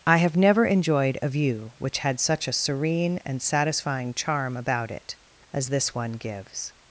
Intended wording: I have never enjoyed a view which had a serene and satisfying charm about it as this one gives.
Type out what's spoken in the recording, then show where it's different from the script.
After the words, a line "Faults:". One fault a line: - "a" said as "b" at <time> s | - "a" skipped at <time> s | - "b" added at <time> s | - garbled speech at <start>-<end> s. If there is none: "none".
I have never enjoyed a view which had such a serene and satisfying charm about it as this one gives.
Faults:
- "such" added at 2.2 s